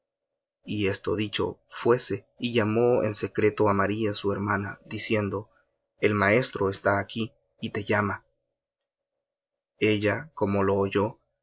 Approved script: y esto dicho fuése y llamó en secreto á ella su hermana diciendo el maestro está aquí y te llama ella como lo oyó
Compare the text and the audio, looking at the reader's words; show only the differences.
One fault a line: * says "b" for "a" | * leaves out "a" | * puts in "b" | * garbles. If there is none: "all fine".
* says "maría" for "ella"